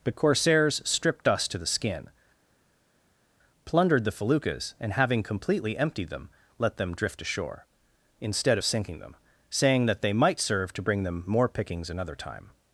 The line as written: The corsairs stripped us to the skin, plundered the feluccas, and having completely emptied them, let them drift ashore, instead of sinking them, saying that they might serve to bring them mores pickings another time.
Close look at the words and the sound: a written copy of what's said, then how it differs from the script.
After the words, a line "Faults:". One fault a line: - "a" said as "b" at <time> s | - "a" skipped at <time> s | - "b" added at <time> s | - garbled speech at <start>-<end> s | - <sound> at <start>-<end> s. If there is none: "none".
The corsairs stripped us to the skin, plundered the feluccas, and having completely emptied them, let them drift ashore, instead of sinking them, saying that they might serve to bring them more pickings another time.
Faults:
- "mores" said as "more" at 11.3 s